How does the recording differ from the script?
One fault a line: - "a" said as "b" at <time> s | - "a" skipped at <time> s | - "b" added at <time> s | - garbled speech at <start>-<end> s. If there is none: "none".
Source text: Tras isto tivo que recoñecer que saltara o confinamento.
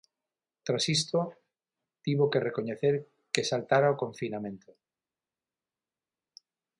none